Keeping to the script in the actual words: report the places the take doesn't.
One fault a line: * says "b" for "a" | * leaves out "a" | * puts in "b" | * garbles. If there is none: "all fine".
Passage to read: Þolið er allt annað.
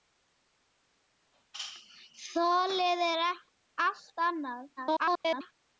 * garbles